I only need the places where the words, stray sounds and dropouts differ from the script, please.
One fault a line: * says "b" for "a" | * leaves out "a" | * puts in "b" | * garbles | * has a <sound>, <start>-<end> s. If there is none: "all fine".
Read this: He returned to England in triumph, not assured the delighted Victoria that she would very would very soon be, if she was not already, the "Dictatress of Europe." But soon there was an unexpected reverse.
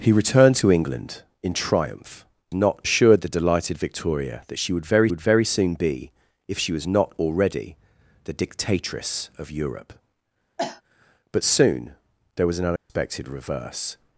* has a cough, 10.6-10.8 s
* has a dropout, 12.8-12.9 s